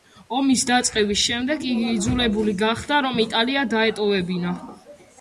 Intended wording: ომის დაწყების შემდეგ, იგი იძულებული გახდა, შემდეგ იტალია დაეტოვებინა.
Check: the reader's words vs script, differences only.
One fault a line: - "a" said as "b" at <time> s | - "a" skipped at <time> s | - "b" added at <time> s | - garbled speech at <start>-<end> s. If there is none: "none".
- "შემდეგ" said as "რომ" at 3.1 s